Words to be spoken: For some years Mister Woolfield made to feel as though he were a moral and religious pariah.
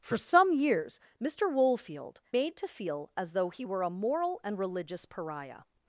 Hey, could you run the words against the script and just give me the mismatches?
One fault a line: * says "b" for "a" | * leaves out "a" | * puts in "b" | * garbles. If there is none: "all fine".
all fine